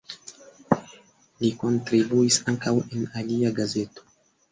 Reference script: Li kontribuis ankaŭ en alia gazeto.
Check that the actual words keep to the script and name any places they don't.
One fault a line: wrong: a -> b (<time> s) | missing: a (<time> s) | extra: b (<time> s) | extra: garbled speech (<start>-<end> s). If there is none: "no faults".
no faults